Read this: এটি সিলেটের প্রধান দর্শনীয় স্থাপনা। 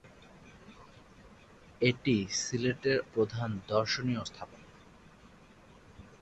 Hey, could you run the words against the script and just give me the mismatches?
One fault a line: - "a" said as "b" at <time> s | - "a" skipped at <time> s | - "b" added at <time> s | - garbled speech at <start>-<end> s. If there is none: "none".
none